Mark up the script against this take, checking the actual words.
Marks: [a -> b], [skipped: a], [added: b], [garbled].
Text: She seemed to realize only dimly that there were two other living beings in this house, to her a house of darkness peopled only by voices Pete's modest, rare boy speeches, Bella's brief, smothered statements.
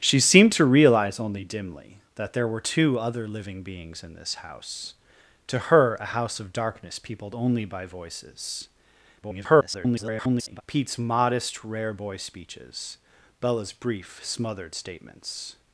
She seemed to realize only dimly that there were two other living beings in this house, to her a house of darkness peopled only by voices [garbled] Pete's modest, rare boy speeches, Bella's brief, smothered statements.